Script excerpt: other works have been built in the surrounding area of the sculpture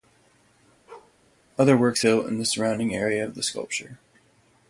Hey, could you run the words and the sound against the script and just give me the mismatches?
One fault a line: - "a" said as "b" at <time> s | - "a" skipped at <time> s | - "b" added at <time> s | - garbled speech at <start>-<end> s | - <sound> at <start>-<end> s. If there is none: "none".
- bark at 0.9-1.2 s
- "have been" skipped at 2.0 s